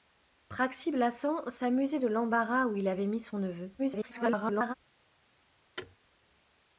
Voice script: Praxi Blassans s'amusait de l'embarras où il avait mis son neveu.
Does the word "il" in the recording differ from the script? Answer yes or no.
no